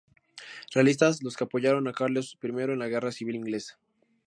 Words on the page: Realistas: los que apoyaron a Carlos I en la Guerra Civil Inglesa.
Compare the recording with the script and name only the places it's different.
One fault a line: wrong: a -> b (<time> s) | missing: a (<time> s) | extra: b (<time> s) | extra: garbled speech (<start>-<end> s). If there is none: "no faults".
no faults